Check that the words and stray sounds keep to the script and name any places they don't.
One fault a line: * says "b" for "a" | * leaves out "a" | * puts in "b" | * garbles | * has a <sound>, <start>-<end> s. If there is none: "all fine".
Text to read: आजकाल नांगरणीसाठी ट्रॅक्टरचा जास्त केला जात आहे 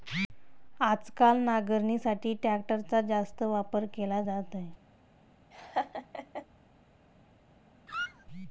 * puts in "वापर"
* has a laugh, 5.5-6.5 s
* has a squeak, 7.9-8.3 s